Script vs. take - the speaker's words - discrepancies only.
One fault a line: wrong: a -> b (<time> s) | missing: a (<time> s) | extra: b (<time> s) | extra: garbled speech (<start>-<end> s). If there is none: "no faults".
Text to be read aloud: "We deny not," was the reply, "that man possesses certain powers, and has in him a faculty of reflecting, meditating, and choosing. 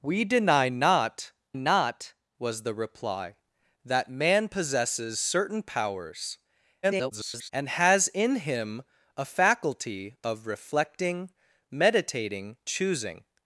extra: not (1.5 s)
extra: garbled speech (6.8-7.5 s)
missing: and (12.6 s)